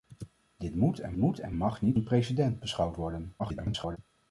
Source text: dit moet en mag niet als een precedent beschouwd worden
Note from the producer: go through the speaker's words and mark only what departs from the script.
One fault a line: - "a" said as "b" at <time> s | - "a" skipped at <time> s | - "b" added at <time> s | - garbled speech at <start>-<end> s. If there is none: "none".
- "moet en" added at 1.2 s
- "als" skipped at 2.0 s
- garbled speech at 3.4-4.0 s